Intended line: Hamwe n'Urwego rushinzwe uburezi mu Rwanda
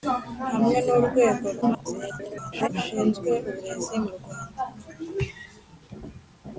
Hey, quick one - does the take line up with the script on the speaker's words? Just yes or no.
no